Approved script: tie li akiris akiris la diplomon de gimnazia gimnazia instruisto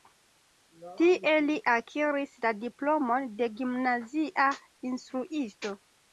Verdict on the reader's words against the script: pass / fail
fail